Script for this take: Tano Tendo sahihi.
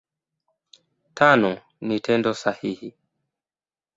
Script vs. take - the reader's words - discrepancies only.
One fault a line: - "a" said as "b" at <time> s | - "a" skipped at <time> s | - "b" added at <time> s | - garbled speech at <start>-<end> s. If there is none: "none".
- "ni" added at 1.8 s